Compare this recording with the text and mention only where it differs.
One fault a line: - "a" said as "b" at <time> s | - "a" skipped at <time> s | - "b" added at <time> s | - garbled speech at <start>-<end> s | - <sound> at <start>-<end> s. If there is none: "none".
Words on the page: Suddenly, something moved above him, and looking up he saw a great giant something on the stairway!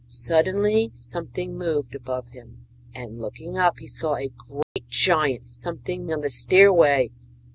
- dropout at 4.6-4.8 s